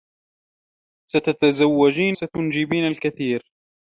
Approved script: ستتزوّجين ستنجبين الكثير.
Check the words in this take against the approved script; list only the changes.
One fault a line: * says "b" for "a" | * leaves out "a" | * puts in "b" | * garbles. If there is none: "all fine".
all fine